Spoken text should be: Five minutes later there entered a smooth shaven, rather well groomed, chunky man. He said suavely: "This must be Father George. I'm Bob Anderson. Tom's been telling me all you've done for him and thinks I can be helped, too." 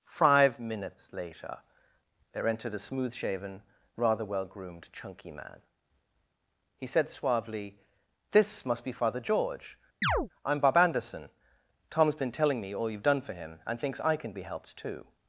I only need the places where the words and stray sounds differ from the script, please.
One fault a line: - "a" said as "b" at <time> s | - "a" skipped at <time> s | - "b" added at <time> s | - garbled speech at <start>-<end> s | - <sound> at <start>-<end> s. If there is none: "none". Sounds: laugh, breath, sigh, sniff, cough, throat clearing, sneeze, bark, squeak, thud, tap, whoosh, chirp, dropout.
- chirp at 10.0-10.3 s